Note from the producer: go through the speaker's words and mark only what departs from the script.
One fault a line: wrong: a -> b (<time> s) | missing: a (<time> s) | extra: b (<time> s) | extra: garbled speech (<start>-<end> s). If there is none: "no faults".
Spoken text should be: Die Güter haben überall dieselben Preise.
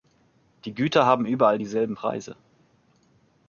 no faults